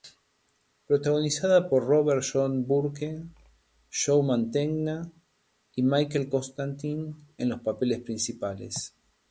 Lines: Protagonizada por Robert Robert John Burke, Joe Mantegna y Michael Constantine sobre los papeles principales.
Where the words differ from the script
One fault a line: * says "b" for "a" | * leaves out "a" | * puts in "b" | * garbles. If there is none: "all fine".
* leaves out "Robert"
* says "en" for "sobre"